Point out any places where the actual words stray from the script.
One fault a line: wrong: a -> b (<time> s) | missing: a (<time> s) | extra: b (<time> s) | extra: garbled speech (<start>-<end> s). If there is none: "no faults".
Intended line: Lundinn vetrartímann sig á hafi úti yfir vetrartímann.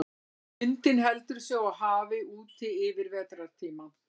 wrong: vetrartímann -> heldur (1.1 s)